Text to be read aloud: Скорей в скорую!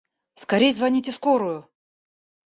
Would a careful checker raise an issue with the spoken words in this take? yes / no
yes